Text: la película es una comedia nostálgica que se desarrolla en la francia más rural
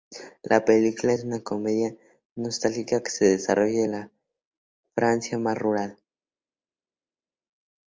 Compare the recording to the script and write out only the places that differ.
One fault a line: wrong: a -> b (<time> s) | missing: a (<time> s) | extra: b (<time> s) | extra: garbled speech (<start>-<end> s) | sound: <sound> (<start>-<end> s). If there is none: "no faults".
no faults